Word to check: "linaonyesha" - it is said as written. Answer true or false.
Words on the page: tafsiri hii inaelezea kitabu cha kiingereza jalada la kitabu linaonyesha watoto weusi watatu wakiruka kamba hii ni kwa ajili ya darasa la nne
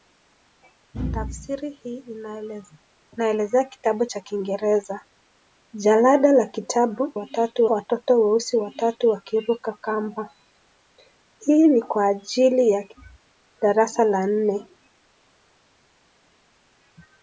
false